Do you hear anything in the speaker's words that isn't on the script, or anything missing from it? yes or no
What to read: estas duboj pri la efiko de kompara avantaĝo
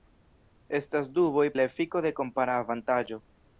yes